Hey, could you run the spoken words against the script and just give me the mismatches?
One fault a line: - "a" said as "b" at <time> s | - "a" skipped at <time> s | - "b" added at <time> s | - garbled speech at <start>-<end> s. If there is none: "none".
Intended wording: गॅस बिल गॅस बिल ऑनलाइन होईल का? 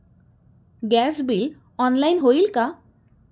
- "गॅस बिल" skipped at 1.5 s